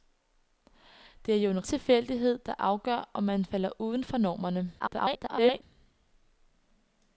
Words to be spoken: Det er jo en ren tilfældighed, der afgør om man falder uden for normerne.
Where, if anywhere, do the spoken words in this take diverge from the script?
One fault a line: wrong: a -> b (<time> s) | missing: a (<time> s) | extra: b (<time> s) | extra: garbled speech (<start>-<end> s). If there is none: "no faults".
missing: ren (1.7 s)
extra: garbled speech (4.8-5.6 s)